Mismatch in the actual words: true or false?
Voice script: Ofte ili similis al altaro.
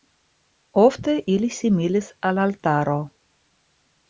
false